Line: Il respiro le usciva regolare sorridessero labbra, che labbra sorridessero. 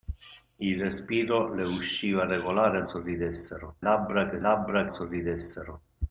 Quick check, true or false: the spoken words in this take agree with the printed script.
true